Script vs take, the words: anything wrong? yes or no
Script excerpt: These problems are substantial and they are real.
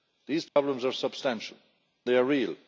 yes